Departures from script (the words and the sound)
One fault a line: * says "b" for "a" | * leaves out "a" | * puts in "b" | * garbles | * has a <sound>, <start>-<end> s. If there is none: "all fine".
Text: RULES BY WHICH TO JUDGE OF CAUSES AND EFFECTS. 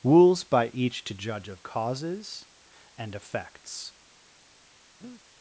* says "Each" for "WHICH"
* has a breath, 5.0-5.2 s